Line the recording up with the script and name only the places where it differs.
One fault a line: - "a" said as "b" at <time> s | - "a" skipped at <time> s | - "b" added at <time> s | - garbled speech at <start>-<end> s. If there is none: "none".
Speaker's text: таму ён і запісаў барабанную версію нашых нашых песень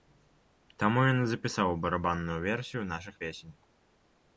- "нашых" skipped at 3.2 s